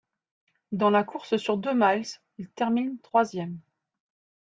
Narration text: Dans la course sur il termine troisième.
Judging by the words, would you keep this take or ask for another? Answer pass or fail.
fail